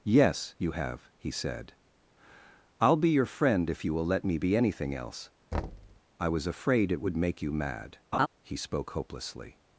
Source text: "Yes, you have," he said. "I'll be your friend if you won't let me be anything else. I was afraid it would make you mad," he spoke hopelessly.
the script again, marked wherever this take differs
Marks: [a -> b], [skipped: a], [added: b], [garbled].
"Yes, you have," he said. "I'll be your friend if you [won't -> will] let me be anything else. I was afraid it would make you mad," he spoke hopelessly.